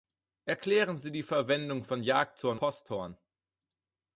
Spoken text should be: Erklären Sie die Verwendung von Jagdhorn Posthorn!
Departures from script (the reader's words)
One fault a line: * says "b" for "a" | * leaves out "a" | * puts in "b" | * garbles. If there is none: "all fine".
all fine